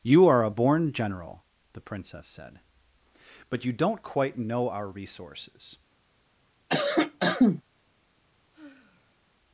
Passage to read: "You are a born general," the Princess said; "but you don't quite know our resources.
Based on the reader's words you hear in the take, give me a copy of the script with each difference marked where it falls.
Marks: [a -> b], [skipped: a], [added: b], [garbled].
"You are a born general," the Princess said; "but you don't quite know our resources.